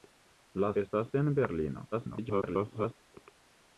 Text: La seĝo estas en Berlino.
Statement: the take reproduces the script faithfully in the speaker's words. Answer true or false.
false